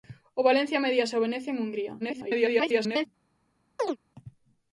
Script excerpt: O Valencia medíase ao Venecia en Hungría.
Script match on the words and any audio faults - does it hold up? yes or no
no